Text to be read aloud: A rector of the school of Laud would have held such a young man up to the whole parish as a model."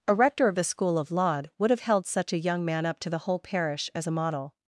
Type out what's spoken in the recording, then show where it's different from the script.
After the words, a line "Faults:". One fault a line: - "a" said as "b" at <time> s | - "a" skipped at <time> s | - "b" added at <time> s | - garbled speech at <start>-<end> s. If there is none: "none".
A rector of the school of Laud would have held such a young man up to the whole parish as a model."
Faults:
none